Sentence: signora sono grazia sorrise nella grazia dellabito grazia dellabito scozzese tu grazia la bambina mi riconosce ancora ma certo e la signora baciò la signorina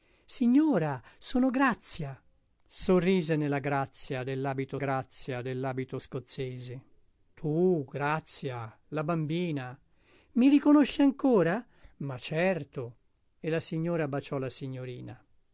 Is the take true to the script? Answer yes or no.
yes